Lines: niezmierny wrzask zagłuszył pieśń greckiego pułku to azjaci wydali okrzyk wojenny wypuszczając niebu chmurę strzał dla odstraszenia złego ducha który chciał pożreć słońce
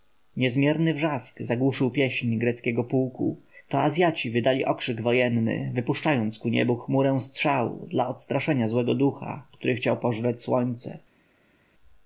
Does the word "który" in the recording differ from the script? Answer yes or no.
no